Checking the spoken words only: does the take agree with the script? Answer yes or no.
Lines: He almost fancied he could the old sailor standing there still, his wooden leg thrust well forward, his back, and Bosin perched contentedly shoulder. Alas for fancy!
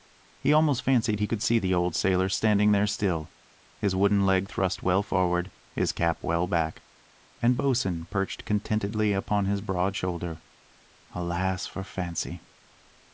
no